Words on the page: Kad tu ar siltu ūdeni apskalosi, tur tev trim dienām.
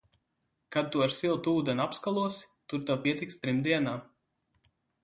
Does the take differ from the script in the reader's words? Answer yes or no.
yes